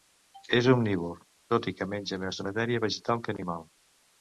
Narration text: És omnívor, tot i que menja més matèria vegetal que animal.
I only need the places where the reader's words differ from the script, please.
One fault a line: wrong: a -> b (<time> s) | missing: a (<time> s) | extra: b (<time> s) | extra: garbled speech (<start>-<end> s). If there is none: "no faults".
no faults